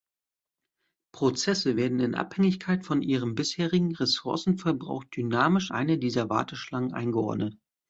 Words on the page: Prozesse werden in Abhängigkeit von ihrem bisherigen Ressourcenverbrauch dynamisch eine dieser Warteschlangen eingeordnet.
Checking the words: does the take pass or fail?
pass